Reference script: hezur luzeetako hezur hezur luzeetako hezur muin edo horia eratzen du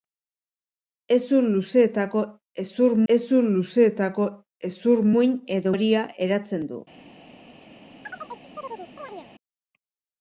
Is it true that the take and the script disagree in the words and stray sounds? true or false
true